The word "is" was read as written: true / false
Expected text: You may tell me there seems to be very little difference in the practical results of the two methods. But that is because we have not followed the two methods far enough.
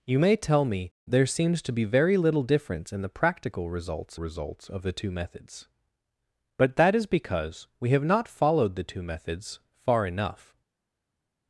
true